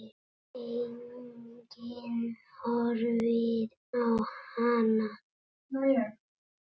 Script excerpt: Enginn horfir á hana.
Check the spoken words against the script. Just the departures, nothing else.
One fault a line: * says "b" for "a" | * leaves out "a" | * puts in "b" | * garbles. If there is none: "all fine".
all fine